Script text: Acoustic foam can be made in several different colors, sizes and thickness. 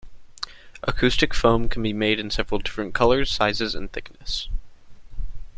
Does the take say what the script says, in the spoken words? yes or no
yes